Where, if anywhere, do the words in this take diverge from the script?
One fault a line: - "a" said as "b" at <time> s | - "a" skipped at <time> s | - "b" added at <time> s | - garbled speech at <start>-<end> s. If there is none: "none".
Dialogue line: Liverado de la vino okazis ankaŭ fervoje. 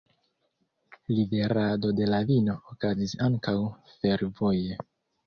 none